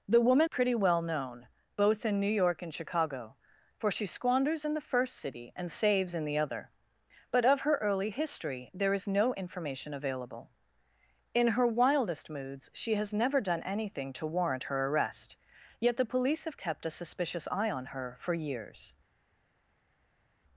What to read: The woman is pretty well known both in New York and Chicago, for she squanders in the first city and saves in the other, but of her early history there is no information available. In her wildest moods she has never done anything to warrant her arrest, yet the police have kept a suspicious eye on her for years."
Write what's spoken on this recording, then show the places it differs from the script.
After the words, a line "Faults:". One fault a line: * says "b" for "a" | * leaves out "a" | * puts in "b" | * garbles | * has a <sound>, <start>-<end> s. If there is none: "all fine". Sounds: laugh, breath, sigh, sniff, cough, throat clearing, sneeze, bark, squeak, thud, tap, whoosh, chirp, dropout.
The woman pretty well known both in New York and Chicago, for she squanders in the first city and saves in the other, but of her early history there is no information available. In her wildest moods she has never done anything to warrant her arrest, yet the police have kept a suspicious eye on her for years."
Faults:
* leaves out "is"